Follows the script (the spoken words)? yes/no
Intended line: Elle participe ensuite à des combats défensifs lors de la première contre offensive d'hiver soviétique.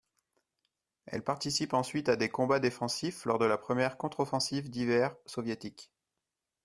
yes